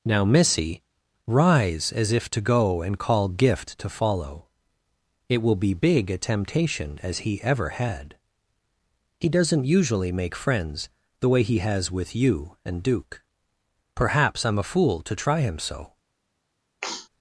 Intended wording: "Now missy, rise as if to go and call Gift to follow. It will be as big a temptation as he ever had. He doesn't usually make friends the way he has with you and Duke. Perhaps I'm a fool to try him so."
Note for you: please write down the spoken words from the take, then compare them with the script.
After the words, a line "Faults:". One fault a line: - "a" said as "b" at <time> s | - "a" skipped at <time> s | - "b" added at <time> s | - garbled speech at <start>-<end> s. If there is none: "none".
"Now missy, rise as if to go and call Gift to follow. It will be big a temptation as he ever had. He doesn't usually make friends the way he has with you and Duke. Perhaps I'm a fool to try him so."
Faults:
- "as" skipped at 5.7 s